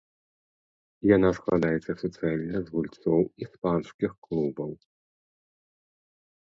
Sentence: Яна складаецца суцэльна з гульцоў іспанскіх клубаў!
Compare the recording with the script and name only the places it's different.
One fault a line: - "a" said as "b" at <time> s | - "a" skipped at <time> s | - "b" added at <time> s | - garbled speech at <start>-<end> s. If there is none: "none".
none